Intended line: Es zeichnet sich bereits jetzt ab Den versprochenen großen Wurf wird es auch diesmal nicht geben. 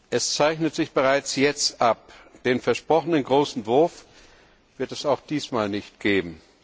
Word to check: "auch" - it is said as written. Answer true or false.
true